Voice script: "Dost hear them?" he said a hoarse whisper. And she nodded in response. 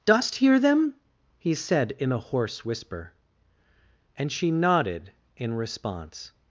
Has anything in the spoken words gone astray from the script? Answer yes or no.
yes